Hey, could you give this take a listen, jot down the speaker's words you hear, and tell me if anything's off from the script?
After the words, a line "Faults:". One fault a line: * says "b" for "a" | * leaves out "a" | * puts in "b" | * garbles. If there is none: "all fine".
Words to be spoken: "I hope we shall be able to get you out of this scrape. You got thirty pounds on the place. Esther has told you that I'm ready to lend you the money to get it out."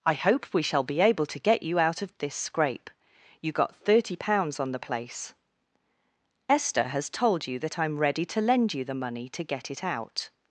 "I hope we shall be able to get you out of this scrape. You got thirty pounds on the place. Esther has told you that I'm ready to lend you the money to get it out."
Faults:
all fine